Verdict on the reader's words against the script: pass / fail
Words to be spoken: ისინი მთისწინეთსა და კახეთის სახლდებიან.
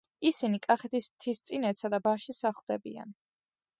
fail